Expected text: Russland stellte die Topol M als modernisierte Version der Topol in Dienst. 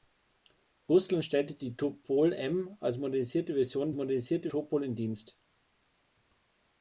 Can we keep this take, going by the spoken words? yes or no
no